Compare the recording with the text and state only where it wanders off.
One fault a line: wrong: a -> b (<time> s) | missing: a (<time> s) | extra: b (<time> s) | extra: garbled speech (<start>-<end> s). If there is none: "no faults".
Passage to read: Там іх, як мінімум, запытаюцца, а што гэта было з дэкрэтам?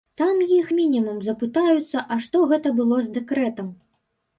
missing: як (0.7 s)